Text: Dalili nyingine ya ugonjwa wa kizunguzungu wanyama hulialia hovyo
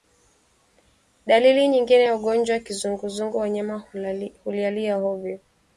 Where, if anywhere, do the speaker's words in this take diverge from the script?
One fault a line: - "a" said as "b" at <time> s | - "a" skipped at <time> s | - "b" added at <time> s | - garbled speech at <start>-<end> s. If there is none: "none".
none